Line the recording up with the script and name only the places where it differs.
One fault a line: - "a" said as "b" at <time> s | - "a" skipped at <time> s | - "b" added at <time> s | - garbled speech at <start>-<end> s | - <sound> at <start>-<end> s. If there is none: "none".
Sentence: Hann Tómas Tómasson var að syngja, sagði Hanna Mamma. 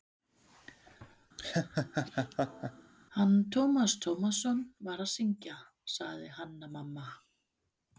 - laugh at 1.4-2.9 s